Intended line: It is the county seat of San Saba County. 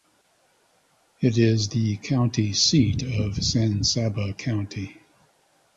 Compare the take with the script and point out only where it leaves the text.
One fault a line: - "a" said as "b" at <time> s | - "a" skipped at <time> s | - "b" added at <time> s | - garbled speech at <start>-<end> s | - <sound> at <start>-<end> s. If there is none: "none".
none